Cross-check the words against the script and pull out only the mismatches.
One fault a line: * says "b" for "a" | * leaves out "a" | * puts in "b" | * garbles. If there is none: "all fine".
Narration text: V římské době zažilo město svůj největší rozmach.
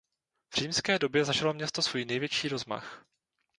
all fine